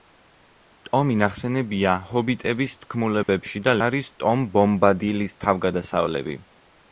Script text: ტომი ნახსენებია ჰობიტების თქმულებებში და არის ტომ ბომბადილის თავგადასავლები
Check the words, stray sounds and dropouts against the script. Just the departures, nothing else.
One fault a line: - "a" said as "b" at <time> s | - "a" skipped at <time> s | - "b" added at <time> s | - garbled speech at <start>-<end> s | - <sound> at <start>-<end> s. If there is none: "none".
- dropout at 3.2-3.3 s